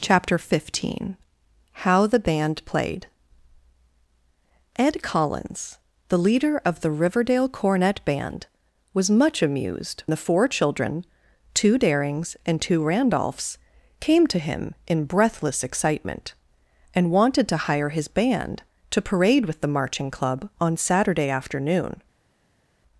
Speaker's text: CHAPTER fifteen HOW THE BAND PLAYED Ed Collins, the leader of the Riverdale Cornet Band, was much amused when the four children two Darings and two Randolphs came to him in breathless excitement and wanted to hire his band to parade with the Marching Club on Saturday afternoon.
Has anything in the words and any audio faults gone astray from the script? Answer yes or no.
yes